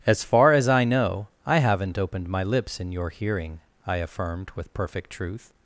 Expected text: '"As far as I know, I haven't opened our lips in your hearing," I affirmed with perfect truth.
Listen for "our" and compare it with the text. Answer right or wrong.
wrong